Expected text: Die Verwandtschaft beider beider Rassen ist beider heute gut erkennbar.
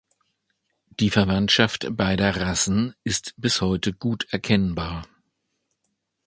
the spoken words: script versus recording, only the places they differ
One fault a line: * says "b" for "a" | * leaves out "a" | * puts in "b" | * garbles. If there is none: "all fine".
* leaves out "beider"
* says "bis" for "beider"